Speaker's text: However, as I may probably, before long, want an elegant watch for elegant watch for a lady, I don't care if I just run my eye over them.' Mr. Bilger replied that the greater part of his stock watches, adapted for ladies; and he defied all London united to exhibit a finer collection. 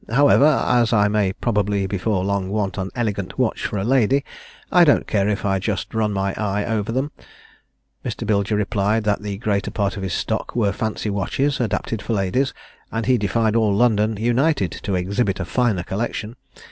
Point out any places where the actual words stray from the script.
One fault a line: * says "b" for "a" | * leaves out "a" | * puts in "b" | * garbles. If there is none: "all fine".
* leaves out "elegant watch for"
* puts in "were fancy"